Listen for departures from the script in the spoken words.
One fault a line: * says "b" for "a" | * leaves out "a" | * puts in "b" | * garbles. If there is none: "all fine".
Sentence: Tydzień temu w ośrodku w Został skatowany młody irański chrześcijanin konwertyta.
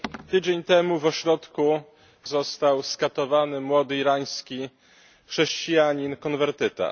all fine